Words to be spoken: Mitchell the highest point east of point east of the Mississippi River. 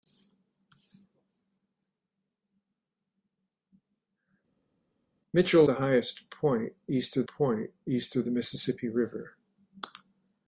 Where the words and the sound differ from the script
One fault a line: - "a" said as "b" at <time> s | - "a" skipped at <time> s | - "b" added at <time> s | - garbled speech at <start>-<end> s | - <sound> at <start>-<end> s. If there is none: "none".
none